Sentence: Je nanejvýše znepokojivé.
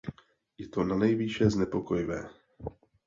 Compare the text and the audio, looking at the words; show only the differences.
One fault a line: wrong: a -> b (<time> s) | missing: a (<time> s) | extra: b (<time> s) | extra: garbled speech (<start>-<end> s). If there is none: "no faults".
extra: to (0.7 s)